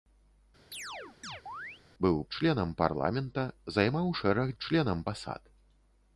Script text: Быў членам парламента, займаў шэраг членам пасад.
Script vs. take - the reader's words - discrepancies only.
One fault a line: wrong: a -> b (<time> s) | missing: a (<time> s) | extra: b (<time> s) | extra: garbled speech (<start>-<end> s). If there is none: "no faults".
no faults